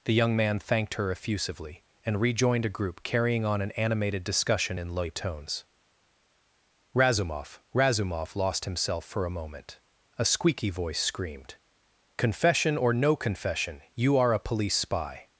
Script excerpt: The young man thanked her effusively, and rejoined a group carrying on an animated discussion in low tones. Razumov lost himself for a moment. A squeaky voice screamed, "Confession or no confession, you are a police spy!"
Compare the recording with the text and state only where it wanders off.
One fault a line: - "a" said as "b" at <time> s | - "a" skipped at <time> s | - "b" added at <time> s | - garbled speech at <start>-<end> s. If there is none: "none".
- "Razumov" added at 7.7 s